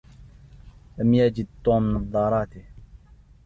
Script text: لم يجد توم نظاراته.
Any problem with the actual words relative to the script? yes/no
no